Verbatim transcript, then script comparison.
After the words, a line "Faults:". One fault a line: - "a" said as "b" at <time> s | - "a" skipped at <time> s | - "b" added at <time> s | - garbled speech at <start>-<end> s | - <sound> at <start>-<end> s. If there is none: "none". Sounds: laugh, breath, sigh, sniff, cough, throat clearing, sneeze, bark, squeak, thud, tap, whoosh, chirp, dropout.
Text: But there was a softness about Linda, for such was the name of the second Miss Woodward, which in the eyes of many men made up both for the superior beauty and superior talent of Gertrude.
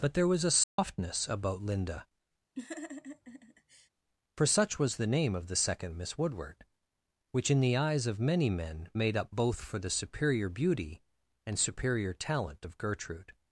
But there was a softness about Linda, for such was the name of the second Miss Woodward, which in the eyes of many men made up both for the superior beauty and superior talent of Gertrude.
Faults:
- dropout at 0.6-0.8 s
- laugh at 2.6-3.9 s